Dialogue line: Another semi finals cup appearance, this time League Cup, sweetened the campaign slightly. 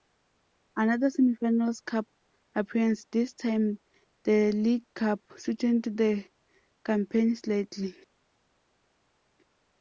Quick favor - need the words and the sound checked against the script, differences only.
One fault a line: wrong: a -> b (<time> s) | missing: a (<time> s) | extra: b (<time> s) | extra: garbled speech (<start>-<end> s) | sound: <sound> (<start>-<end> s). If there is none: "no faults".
extra: the (4.2 s)